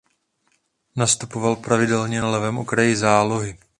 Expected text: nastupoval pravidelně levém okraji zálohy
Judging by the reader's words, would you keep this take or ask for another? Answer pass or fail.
fail